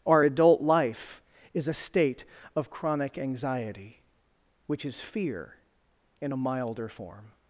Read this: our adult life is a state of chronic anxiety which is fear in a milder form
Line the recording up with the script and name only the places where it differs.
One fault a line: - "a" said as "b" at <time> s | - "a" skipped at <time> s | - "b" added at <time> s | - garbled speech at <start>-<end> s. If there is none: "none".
none